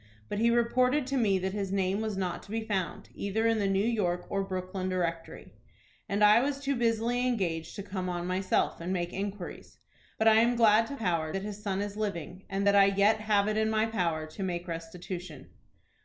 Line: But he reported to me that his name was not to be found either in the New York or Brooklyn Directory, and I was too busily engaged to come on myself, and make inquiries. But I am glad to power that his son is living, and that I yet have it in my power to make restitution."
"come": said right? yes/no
yes